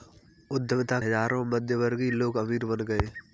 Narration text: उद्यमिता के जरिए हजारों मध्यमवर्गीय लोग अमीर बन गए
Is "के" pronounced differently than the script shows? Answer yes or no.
yes